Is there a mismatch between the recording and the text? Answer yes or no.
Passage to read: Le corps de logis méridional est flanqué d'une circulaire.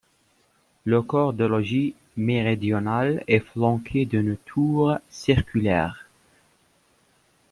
yes